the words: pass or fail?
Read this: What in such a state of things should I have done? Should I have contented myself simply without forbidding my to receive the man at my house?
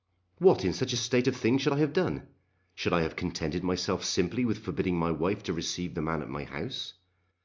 fail